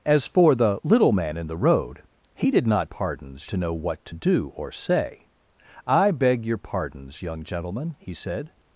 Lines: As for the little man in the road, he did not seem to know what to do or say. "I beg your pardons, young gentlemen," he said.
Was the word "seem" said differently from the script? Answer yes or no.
yes